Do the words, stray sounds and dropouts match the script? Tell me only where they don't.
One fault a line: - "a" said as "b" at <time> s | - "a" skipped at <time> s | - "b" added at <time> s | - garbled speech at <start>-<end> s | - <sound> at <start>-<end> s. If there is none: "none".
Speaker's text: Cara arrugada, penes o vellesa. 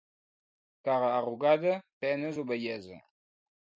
none